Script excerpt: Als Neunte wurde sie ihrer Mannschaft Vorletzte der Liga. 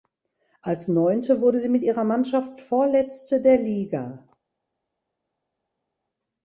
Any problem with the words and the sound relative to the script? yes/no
yes